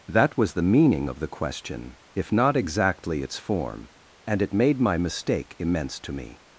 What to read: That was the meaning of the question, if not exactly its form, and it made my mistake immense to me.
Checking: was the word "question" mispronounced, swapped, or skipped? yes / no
no